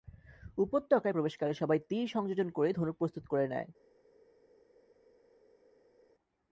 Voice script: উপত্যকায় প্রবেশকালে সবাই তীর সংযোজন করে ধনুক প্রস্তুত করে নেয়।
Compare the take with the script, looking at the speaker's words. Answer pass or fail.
pass